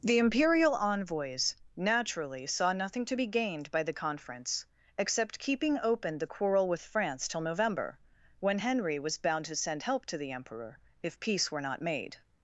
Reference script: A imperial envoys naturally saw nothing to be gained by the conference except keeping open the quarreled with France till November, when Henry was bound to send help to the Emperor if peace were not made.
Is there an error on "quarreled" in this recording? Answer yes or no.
yes